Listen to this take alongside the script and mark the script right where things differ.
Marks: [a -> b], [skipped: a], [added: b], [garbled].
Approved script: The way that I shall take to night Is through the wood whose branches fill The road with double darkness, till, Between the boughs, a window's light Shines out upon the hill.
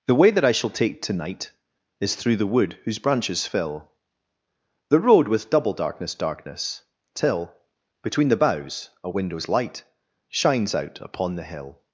The way that I shall take to night Is through the wood whose branches fill The road with double darkness, [added: darkness] till, Between the boughs, a window's light Shines out upon the hill.